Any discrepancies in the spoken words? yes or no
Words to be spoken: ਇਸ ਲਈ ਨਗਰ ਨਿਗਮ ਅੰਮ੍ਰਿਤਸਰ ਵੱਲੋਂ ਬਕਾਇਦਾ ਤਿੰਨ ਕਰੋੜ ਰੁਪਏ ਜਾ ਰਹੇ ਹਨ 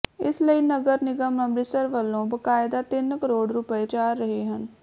no